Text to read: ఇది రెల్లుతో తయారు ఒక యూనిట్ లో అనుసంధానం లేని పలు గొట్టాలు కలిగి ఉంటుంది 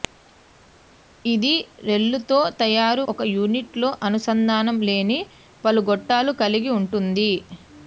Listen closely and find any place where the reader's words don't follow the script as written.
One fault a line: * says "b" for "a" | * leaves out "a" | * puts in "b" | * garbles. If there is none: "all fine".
all fine